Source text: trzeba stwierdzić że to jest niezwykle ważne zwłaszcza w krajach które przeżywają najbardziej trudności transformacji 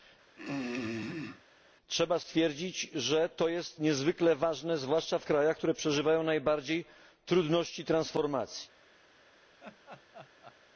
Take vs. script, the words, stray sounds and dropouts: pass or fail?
fail